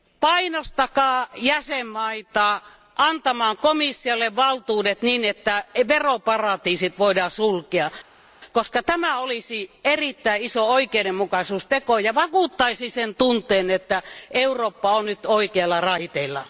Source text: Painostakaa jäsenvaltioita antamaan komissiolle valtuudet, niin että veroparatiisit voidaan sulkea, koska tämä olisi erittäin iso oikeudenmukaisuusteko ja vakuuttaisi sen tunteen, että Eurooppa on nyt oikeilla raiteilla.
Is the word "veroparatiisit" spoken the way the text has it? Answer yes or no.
yes